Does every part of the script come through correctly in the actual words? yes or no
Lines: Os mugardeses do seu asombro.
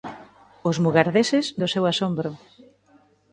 yes